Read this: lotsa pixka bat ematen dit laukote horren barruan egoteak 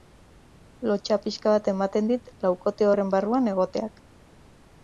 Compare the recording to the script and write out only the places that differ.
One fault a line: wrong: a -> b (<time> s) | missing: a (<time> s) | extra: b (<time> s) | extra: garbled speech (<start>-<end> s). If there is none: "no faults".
no faults